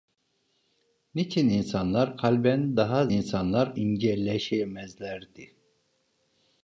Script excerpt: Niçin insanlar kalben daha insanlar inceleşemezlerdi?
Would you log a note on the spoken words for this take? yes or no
no